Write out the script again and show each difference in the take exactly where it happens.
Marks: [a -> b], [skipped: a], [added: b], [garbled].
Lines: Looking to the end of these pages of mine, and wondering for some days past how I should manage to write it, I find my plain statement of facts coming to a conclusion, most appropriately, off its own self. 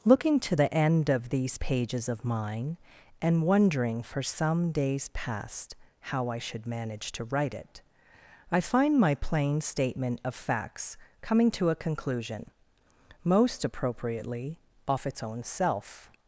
Looking to the end of these pages of mine, and wondering for some days past how I should manage to write it, I find my plain statement of facts coming to a conclusion, most appropriately, off its own self.